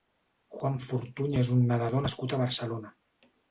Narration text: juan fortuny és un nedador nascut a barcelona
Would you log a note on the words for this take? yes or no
no